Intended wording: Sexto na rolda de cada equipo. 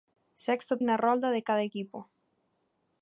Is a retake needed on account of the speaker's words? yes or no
no